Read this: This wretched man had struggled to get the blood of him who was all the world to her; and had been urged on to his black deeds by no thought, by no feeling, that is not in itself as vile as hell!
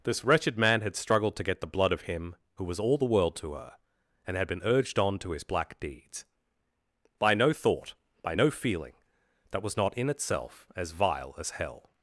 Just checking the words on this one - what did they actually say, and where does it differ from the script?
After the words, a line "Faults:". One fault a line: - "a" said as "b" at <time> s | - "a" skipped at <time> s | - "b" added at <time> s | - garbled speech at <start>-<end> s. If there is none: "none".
This wretched man had struggled to get the blood of him who was all the world to her; and had been urged on to his black deeds by no thought, by no feeling, that was not in itself as vile as hell!
Faults:
- "is" said as "was" at 9.6 s